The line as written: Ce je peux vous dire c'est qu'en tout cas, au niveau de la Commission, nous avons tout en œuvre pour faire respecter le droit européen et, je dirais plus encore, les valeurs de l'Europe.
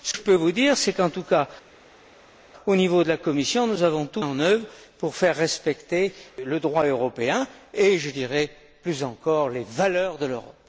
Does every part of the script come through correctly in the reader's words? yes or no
yes